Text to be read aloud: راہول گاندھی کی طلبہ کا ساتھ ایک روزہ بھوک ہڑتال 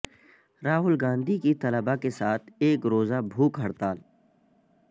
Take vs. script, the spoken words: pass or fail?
fail